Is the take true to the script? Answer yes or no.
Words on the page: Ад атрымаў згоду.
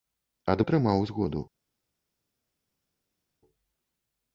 yes